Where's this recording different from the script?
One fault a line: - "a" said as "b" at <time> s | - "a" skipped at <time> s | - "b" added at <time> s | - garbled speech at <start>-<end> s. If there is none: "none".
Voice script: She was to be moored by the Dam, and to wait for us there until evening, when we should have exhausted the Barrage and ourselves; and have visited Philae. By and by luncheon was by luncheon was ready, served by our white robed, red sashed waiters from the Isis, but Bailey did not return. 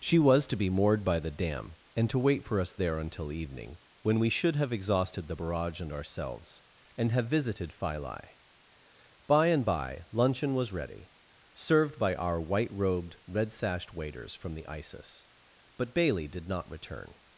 - "by luncheon was" skipped at 10.7 s